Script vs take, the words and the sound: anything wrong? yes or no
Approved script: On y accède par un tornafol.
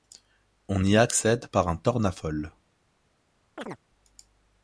yes